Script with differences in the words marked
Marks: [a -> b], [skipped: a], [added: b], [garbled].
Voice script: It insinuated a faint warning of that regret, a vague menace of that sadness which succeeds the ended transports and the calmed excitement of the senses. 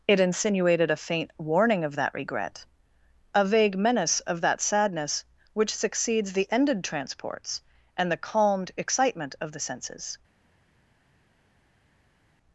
It insinuated a faint warning of that regret, a vague menace of that sadness which succeeds the ended transports and the calmed excitement of the senses.